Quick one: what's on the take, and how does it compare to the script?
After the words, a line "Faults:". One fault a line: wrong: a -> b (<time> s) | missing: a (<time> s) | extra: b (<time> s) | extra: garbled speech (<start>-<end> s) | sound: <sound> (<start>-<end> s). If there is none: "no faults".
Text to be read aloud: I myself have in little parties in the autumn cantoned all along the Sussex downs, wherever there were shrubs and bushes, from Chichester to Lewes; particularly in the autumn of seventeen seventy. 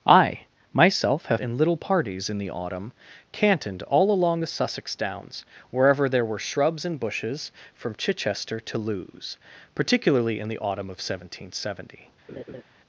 I myself have in little parties in the autumn cantoned all along the Sussex downs, wherever there were shrubs and bushes, from Chichester to Lewes; particularly in the autumn of seventeen seventy.
Faults:
sound: laugh (12.3-12.6 s)